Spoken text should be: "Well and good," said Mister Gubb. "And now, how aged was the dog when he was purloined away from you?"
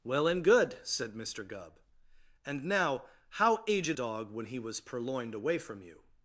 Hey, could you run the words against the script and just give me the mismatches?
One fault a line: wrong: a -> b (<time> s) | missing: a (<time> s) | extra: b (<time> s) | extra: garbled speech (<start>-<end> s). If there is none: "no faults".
missing: was the (4.0 s)